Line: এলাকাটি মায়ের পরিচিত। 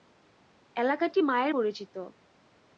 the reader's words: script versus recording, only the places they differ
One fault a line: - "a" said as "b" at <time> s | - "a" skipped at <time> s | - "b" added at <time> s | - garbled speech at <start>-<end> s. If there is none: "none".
none